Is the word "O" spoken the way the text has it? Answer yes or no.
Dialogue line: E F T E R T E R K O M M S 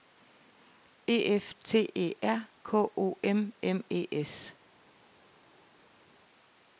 yes